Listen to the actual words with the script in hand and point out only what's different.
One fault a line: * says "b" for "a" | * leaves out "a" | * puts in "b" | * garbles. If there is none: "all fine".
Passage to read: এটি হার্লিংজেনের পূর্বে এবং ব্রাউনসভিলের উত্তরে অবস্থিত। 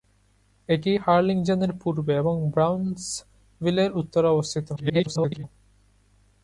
* garbles